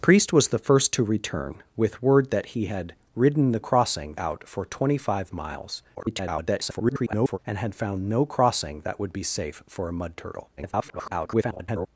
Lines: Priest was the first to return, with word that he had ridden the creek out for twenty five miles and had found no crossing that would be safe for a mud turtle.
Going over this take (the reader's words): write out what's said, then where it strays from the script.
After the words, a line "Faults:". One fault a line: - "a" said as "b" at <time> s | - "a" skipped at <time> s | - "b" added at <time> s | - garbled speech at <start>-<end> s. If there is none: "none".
Priest was the first to return, with word that he had ridden the crossing out for twenty five miles [garbled] and had found no crossing that would be safe for a mud turtle. [garbled]
Faults:
- "creek" said as "crossing" at 3.6 s
- garbled speech at 5.9-7.4 s
- garbled speech at 10.6-11.9 s